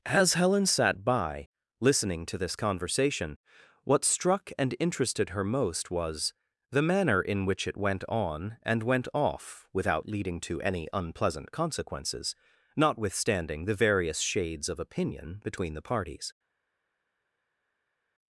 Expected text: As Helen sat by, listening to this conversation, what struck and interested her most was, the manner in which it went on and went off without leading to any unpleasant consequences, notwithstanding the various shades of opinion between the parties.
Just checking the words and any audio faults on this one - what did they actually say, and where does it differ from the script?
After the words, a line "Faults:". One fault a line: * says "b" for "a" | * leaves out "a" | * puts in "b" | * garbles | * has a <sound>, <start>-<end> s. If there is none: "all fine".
As Helen sat by, listening to this conversation, what struck and interested her most was, the manner in which it went on and went off without leading to any unpleasant consequences, notwithstanding the various shades of opinion between the parties.
Faults:
all fine